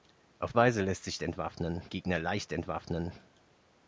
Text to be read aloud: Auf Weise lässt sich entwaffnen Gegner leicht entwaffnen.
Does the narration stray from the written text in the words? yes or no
no